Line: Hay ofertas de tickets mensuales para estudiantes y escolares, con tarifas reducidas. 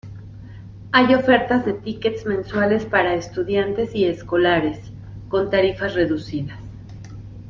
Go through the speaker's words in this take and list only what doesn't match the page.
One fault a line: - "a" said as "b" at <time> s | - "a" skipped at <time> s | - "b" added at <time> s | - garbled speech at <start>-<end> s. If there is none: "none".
none